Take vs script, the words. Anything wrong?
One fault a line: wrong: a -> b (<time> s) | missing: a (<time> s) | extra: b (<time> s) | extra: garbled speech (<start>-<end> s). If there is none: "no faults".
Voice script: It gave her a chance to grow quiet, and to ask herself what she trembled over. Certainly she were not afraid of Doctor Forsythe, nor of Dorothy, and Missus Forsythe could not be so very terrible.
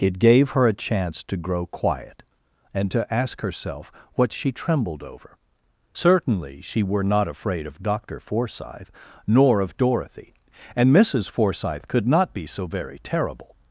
no faults